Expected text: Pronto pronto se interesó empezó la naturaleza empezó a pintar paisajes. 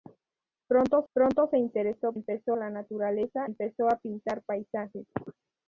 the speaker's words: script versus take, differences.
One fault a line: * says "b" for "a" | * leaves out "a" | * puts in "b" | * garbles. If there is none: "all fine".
all fine